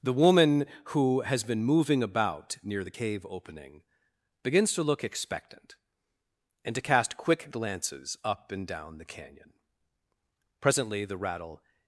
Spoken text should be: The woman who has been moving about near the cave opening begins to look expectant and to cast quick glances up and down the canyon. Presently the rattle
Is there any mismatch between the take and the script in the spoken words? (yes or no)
no